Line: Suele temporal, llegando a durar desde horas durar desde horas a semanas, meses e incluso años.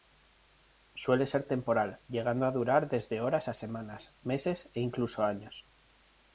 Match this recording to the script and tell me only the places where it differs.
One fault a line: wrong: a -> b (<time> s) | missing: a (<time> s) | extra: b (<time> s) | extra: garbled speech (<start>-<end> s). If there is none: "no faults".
extra: ser (1.3 s)
missing: durar desde horas (3.5 s)